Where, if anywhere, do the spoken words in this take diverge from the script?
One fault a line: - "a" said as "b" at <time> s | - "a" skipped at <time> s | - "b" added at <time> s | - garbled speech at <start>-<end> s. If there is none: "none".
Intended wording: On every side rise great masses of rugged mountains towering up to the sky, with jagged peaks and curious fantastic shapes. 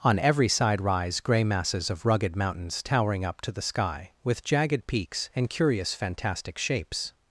- "great" said as "grey" at 1.2 s